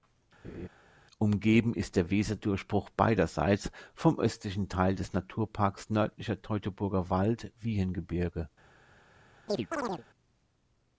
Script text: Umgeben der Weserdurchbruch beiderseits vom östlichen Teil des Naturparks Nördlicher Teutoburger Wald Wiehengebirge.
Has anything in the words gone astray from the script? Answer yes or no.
yes